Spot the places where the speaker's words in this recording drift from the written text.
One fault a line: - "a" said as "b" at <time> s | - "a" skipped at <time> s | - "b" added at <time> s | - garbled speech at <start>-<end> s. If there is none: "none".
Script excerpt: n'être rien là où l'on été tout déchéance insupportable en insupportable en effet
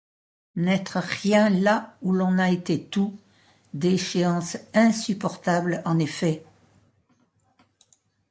- "a" added at 2.4 s
- "insupportable en" skipped at 6.0 s